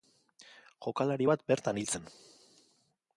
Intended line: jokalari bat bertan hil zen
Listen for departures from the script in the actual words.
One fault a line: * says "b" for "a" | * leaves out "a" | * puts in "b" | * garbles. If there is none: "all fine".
all fine